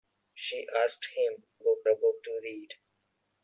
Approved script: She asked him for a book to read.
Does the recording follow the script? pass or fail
fail